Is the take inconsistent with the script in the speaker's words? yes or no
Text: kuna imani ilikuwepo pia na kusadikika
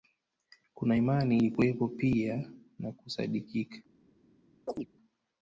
no